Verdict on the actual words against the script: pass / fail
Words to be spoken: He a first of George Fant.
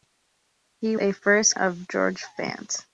pass